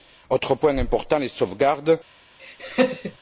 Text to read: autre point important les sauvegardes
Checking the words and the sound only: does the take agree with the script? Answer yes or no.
no